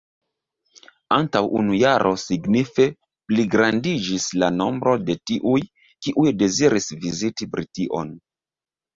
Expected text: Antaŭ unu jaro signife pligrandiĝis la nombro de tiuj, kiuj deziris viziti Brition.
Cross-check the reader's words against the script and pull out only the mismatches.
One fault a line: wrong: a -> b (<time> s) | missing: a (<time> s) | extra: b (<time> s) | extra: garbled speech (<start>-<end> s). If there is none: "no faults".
no faults